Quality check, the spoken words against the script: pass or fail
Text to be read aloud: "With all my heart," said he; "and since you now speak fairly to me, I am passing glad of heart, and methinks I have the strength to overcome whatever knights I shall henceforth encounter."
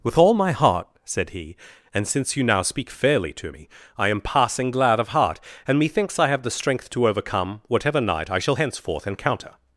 fail